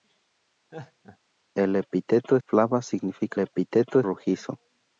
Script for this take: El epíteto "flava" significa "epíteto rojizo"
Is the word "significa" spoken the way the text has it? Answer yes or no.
yes